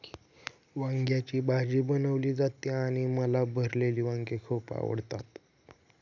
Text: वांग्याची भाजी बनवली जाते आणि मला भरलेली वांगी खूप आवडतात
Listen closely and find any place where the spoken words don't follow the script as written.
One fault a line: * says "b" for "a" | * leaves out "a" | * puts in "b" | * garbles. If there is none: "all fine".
all fine